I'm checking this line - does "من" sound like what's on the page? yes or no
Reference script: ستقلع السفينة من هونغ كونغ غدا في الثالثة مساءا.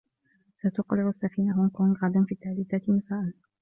no